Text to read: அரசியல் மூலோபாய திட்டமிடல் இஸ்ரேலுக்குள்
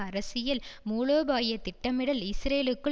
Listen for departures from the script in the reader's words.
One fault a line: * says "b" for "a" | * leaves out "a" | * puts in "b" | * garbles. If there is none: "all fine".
all fine